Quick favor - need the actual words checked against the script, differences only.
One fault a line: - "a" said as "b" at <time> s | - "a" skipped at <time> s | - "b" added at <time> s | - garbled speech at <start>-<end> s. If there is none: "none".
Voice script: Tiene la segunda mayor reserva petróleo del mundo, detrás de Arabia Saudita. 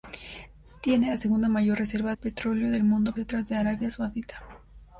none